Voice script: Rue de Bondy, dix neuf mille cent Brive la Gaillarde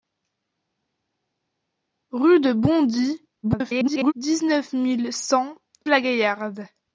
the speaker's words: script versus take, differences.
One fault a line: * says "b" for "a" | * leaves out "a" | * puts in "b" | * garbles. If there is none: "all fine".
* garbles
* leaves out "Brive"